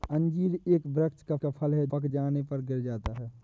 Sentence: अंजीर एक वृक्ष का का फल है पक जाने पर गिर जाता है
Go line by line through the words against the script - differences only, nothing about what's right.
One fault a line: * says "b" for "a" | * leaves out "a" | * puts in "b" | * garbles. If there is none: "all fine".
all fine